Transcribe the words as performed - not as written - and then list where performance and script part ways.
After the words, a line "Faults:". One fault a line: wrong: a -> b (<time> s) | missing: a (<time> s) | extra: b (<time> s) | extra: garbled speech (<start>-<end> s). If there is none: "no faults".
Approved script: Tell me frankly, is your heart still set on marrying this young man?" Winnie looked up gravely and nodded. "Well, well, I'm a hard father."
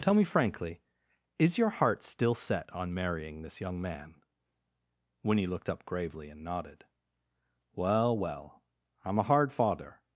Tell me frankly, is your heart still set on marrying this young man?" Winnie looked up gravely and nodded. "Well, well, I'm a hard father."
Faults:
no faults